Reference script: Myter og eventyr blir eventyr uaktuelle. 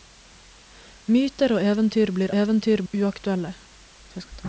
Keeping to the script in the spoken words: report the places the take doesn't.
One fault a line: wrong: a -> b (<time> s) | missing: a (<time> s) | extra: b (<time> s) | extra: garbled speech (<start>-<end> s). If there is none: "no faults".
no faults